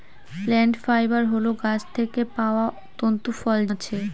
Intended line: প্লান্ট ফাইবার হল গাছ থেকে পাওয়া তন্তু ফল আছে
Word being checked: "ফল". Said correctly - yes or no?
yes